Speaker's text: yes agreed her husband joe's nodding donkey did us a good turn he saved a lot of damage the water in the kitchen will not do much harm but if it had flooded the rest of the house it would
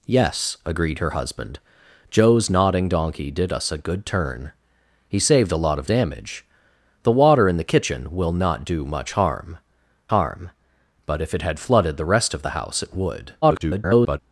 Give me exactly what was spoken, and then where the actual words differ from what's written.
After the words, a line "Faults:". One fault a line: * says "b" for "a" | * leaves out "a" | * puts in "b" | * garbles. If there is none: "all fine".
yes agreed her husband joe's nodding donkey did us a good turn he saved a lot of damage the water in the kitchen will not do much harm harm but if it had flooded the rest of the house it would [garbled]
Faults:
* puts in "harm"
* garbles